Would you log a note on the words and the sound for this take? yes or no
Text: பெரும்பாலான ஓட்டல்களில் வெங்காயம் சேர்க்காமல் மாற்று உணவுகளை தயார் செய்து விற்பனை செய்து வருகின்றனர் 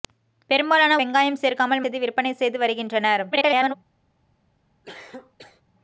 yes